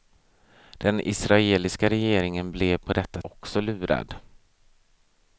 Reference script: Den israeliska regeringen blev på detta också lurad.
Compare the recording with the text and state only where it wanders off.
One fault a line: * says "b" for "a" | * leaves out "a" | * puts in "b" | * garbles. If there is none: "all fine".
all fine